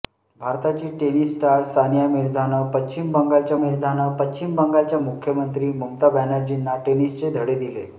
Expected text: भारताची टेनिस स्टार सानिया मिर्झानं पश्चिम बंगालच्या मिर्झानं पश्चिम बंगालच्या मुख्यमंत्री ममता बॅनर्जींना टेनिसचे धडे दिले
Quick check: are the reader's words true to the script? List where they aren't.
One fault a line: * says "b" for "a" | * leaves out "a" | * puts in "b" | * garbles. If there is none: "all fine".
all fine